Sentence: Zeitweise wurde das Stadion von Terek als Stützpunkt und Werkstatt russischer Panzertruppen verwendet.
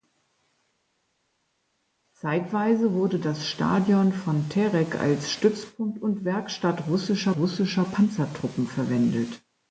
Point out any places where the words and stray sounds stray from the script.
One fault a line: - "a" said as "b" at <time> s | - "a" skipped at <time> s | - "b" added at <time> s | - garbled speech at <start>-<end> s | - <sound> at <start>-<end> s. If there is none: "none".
- "russischer" added at 7.4 s